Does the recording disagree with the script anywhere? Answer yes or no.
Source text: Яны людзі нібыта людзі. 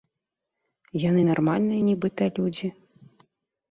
yes